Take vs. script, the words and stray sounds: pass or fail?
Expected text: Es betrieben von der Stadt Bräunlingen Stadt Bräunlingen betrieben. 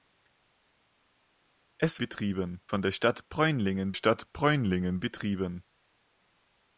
pass